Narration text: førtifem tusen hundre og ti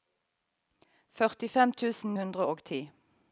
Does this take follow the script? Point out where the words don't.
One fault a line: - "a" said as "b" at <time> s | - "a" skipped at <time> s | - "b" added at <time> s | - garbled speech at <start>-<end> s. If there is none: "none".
none